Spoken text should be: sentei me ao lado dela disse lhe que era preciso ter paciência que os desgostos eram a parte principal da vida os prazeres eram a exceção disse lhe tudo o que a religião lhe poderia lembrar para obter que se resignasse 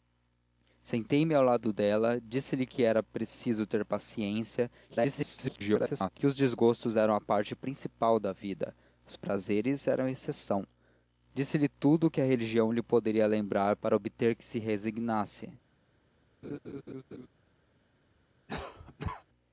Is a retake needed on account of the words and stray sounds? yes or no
yes